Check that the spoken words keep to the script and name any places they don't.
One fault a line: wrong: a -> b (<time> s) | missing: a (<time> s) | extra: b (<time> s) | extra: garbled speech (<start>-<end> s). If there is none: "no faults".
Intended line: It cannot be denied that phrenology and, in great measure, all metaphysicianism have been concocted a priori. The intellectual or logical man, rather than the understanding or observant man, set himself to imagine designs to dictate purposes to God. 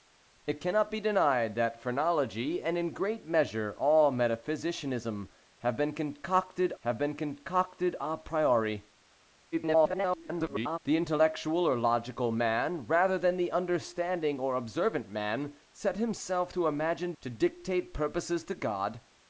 extra: have been concocted (6.8 s)
extra: garbled speech (9.5-10.8 s)
missing: designs (17.1 s)